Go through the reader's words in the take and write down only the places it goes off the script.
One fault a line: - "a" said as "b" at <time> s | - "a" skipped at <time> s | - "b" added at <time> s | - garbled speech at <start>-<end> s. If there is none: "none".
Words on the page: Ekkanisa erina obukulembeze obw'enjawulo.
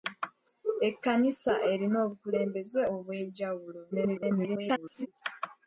- garbled speech at 3.9-5.1 s